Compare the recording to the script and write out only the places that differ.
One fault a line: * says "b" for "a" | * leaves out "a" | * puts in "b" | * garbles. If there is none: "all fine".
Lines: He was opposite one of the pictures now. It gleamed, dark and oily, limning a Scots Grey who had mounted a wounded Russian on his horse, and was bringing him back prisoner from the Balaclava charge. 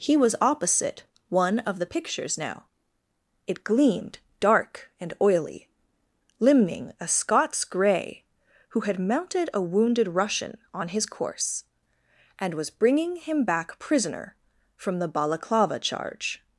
* says "course" for "horse"